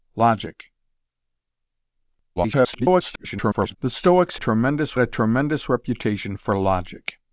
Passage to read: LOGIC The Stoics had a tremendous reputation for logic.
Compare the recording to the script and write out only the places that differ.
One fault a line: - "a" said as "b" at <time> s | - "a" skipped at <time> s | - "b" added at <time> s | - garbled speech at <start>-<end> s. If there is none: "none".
- garbled speech at 2.4-3.8 s
- "had" said as "tremendous" at 4.3 s